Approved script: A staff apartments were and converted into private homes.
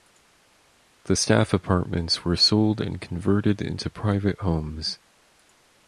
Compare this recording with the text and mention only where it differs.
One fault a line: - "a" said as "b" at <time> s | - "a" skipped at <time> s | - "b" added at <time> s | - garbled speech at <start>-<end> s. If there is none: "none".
- "A" said as "The" at 1.0 s
- "sold" added at 2.4 s